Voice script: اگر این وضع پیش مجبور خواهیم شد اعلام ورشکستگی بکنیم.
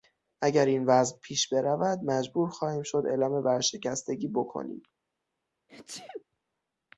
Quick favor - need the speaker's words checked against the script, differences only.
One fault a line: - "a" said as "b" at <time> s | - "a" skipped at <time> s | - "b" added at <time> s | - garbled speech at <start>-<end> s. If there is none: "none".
- "برود" added at 1.5 s